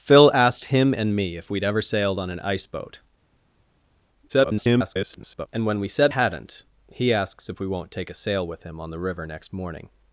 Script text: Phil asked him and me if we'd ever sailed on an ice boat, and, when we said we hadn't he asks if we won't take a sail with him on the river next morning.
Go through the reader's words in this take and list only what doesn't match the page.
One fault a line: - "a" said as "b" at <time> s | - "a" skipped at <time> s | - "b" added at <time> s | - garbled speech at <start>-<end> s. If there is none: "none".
- garbled speech at 4.3-5.5 s
- "we" skipped at 6.1 s